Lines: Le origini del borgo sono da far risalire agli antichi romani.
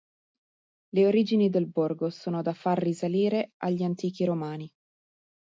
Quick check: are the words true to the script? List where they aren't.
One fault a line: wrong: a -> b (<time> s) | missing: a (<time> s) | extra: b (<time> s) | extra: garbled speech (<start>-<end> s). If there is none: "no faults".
no faults